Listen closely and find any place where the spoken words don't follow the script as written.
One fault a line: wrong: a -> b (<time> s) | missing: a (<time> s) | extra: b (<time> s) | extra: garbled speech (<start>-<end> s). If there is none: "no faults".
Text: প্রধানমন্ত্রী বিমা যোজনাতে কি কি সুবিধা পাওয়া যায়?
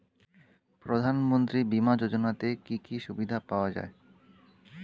no faults